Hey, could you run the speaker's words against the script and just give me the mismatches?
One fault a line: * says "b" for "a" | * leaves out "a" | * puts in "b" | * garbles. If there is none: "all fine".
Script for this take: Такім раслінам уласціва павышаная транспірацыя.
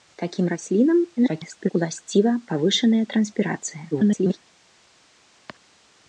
* garbles
* garbles